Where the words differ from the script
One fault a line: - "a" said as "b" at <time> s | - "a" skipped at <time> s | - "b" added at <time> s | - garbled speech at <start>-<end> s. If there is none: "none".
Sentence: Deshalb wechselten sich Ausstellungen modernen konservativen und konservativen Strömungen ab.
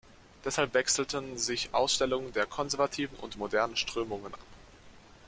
- "modernen" said as "der" at 2.3 s
- "konservativen" said as "modernen" at 3.4 s